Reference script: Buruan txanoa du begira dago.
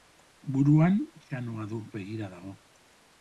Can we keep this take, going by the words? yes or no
yes